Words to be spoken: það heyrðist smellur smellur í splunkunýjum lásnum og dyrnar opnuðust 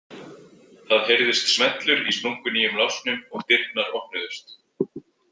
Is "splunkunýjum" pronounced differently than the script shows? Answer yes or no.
no